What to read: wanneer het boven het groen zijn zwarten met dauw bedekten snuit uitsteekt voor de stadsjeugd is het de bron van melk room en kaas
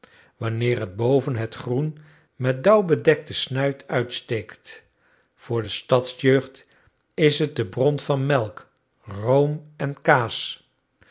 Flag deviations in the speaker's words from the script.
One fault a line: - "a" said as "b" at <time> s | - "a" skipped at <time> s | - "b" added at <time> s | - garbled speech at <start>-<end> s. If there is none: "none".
- "zijn zwarten" skipped at 2.0 s